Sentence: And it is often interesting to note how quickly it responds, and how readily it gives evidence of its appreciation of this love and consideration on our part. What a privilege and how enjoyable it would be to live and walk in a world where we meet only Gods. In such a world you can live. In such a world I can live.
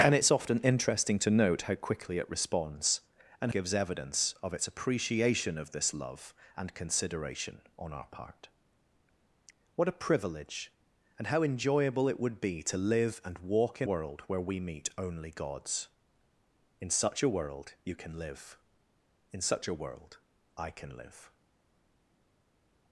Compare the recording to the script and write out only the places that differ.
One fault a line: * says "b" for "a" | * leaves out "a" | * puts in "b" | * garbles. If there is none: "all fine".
* leaves out "how readily it"
* leaves out "a"